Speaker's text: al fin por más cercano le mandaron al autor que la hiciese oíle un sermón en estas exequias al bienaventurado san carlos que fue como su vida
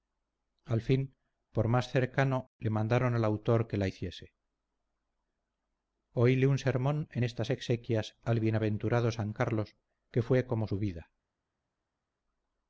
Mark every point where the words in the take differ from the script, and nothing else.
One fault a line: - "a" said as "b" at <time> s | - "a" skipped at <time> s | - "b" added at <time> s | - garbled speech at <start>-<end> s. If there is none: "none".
none